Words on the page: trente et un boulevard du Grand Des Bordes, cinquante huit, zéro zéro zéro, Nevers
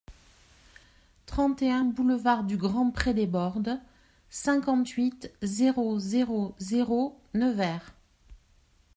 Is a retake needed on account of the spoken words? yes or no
yes